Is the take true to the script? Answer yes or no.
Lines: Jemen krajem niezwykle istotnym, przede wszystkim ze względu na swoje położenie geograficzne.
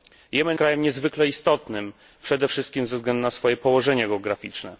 yes